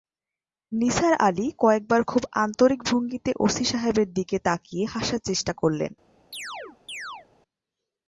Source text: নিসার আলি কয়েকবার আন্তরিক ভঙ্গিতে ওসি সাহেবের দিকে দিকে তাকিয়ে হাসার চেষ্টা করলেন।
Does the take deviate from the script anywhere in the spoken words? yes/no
yes